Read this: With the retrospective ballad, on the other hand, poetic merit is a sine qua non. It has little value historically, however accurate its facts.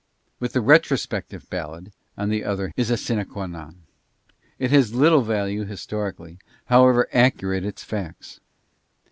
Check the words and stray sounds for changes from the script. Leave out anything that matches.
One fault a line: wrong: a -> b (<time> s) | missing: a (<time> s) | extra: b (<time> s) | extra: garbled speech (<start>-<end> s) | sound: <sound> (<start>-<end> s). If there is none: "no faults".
missing: hand poetic merit (2.7 s)